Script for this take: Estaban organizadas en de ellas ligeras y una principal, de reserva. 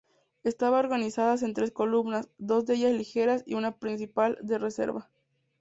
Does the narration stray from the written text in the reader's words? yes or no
yes